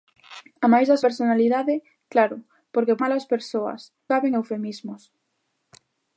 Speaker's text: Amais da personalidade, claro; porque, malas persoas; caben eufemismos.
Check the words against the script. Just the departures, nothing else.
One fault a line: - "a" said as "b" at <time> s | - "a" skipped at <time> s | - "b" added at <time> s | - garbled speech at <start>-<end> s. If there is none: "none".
none